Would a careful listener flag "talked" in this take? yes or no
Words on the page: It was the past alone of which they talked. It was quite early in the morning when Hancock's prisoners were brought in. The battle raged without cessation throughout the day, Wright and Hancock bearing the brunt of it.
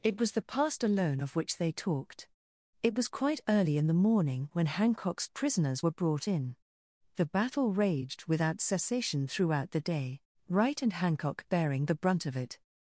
no